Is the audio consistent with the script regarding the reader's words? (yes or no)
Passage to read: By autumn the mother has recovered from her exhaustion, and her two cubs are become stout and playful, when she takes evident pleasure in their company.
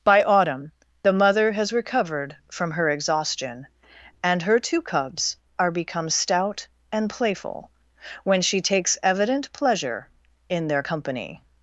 yes